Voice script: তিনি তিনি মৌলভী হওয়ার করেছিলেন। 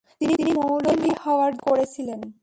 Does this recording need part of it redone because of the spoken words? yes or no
no